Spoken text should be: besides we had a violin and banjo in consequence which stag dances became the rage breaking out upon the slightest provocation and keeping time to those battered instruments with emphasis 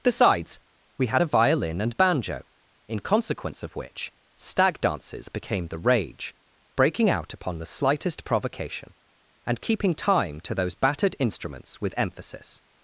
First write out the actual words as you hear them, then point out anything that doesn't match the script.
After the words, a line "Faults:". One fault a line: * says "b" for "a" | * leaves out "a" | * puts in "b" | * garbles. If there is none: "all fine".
besides we had a violin and banjo in consequence of which stag dances became the rage breaking out upon the slightest provocation and keeping time to those battered instruments with emphasis
Faults:
* puts in "of"